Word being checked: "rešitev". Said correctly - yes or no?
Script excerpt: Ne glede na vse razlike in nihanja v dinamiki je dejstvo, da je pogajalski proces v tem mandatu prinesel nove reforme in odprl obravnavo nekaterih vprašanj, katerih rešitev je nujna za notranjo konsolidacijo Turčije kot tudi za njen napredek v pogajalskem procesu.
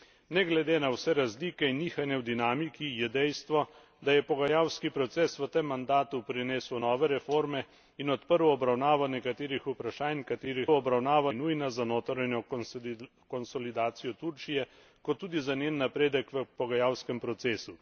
no